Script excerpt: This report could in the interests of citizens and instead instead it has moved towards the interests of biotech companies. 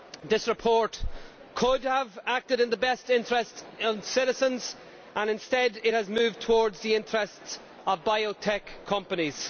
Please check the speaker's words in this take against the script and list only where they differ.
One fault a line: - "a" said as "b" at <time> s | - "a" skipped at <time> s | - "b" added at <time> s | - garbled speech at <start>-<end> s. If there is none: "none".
- "have acted" added at 1.8 s
- "best" added at 2.8 s
- "instead" skipped at 5.8 s